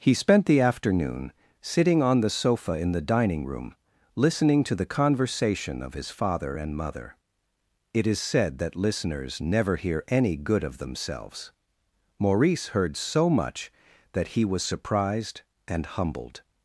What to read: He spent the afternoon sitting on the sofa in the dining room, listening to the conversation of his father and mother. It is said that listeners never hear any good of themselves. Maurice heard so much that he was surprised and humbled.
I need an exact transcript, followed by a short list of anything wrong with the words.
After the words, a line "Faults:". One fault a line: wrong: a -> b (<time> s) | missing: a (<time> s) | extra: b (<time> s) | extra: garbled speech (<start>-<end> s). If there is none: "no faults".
He spent the afternoon sitting on the sofa in the dining room, listening to the conversation of his father and mother. It is said that listeners never hear any good of themselves. Maurice heard so much that he was surprised and humbled.
Faults:
no faults